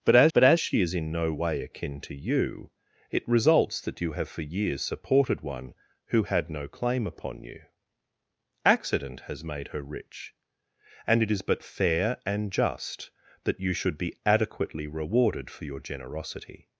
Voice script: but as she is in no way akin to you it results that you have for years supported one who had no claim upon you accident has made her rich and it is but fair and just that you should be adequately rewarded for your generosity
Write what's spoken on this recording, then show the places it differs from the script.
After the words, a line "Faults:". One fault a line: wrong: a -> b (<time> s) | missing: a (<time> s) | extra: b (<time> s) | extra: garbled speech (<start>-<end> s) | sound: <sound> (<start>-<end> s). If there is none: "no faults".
but as but as she is in no way akin to you it results that you have for years supported one who had no claim upon you accident has made her rich and it is but fair and just that you should be adequately rewarded for your generosity
Faults:
extra: but as (0.3 s)